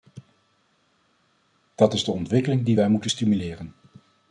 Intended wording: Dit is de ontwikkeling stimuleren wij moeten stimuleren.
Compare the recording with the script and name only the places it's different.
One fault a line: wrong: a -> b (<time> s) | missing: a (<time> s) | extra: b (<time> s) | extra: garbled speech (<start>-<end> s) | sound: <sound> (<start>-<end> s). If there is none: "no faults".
wrong: Dit -> Dat (1.8 s)
wrong: stimuleren -> die (2.6 s)